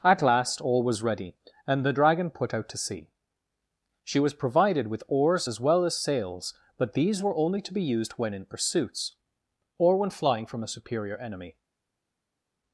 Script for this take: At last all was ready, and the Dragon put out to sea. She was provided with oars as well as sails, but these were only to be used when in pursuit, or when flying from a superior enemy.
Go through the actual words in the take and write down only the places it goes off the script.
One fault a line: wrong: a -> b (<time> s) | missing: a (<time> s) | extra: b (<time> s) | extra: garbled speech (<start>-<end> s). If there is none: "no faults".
wrong: pursuit -> pursuits (8.4 s)